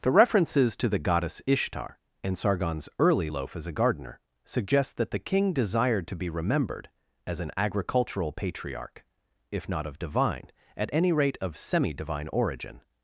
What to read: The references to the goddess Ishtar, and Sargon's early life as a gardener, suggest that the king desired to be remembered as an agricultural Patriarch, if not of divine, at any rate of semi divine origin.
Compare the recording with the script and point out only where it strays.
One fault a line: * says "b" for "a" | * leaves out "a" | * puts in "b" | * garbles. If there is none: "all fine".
* says "loaf" for "life"